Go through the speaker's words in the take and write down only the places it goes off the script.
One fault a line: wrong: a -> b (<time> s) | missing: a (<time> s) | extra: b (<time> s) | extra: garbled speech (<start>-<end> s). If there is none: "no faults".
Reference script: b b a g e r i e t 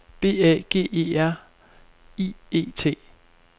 missing: b (0.4 s)